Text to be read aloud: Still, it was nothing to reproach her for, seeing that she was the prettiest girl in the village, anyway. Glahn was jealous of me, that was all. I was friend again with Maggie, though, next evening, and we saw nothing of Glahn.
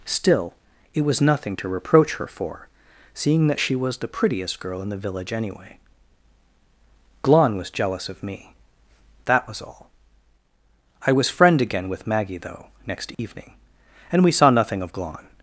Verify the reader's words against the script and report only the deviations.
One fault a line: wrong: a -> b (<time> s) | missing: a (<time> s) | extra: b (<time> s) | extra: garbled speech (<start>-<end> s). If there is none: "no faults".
no faults